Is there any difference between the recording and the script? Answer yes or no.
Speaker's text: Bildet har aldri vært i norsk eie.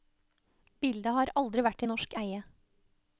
no